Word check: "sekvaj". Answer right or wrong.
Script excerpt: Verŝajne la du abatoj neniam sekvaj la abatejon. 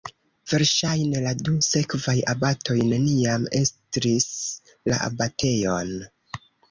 wrong